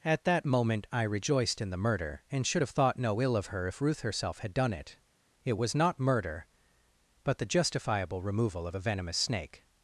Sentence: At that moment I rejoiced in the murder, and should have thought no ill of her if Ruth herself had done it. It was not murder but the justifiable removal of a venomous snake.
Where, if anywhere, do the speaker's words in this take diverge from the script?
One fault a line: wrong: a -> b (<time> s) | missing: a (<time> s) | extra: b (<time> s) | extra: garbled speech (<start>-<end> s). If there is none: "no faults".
no faults